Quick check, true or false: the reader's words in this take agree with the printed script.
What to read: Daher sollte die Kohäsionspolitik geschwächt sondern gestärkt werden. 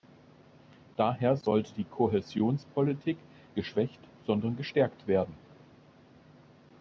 true